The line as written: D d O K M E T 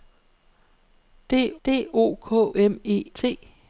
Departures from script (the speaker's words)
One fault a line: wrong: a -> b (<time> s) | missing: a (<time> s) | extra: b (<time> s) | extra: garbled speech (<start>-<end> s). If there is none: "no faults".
no faults